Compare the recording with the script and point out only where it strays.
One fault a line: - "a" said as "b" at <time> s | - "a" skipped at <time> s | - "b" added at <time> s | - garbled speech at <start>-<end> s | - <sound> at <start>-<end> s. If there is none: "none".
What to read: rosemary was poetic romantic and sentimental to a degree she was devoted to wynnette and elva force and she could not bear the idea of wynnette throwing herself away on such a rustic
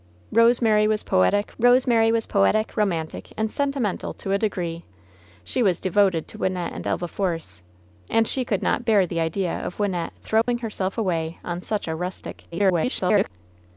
- "rosemary was poetic" added at 1.6 s
- dropout at 10.4-10.5 s
- garbled speech at 12.5-13.3 s